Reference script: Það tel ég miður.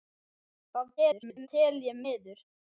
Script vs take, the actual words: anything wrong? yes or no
yes